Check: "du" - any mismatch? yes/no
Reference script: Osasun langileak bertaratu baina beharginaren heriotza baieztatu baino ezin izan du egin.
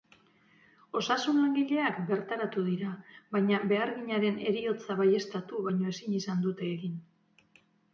yes